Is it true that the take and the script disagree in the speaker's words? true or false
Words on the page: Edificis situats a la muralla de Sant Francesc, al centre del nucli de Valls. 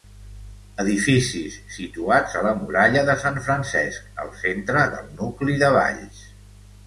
false